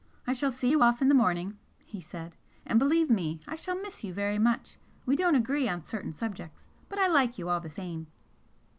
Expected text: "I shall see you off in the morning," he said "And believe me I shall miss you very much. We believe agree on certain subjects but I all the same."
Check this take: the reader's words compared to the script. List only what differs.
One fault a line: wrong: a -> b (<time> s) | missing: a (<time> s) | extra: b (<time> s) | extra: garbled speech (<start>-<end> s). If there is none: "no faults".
wrong: believe -> don't (5.2 s)
extra: like you (7.1 s)